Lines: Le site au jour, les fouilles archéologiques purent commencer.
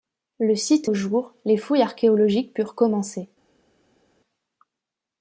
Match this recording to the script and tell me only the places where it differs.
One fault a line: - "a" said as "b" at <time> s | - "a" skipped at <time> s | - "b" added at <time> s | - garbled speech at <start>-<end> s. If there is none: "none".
none